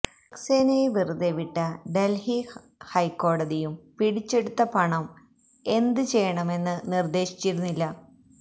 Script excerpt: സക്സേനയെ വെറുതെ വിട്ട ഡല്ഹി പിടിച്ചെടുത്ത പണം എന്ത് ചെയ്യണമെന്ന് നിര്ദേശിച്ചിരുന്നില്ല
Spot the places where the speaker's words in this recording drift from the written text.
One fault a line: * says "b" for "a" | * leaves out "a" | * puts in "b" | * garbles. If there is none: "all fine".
* puts in "ഹൈക്കോടതിയും"